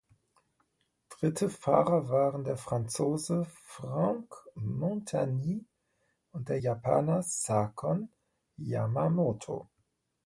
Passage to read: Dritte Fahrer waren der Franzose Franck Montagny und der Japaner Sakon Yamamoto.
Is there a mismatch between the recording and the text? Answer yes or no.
no